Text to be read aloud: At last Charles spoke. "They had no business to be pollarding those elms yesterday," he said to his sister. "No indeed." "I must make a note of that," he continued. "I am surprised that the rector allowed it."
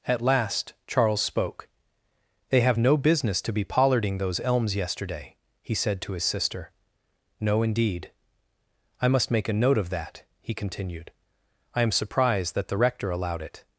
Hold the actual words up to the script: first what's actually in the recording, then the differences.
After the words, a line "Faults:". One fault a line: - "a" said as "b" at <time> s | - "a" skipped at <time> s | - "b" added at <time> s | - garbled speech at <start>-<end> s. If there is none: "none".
At last Charles spoke. "They have no business to be pollarding those elms yesterday," he said to his sister. "No indeed." "I must make a note of that," he continued. "I am surprised that the rector allowed it."
Faults:
- "had" said as "have" at 2.6 s